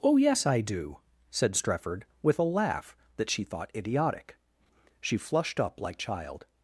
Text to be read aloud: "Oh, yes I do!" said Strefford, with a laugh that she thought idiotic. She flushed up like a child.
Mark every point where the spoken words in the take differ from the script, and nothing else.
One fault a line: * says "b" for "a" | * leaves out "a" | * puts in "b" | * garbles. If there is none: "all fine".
* leaves out "a"